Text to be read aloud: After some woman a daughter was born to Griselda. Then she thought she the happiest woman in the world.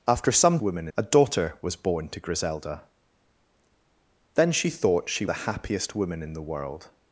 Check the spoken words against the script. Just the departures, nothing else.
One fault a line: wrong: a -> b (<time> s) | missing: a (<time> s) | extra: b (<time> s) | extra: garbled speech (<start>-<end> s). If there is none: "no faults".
no faults